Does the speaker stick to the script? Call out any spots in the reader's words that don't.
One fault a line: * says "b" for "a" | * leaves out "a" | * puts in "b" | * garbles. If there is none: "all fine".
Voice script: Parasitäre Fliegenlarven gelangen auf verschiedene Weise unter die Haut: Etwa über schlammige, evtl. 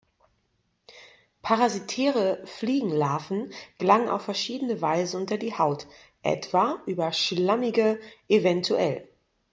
all fine